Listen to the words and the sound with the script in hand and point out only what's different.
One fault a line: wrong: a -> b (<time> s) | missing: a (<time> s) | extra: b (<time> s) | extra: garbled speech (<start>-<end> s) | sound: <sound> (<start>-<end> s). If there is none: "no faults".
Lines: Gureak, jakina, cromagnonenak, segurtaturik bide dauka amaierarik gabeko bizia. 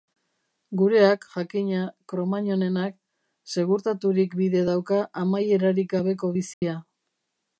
sound: dropout (6.5-6.6 s)